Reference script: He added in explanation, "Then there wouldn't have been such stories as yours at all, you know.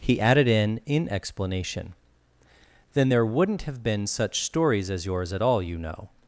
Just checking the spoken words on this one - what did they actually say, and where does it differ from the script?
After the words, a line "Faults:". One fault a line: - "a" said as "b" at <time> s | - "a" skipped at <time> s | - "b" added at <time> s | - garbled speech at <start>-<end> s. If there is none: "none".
He added in in explanation, "Then there wouldn't have been such stories as yours at all, you know.
Faults:
- "in" added at 0.9 s